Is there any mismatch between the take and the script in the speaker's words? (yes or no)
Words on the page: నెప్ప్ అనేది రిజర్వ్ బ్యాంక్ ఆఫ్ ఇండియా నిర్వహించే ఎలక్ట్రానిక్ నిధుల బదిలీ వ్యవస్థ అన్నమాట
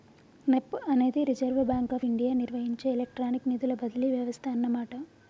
no